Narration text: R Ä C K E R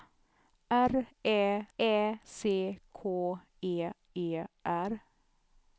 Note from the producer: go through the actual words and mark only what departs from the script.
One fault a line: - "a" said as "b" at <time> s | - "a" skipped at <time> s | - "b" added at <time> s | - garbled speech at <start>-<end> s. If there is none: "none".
- "Ä" added at 1.8 s
- "E" added at 4.2 s